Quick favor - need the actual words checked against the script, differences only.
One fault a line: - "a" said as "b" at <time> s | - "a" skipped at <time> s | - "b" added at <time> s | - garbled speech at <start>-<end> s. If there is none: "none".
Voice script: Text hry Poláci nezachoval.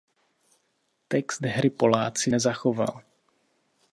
none